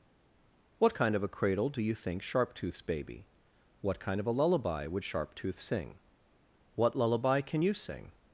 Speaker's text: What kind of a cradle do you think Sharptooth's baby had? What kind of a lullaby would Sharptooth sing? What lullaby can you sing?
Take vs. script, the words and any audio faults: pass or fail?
fail